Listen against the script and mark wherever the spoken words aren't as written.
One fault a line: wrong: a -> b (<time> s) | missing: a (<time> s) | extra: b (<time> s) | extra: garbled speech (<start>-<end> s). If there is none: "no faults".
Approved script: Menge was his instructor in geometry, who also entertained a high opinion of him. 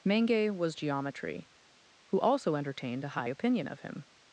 missing: his instructor in (0.7 s)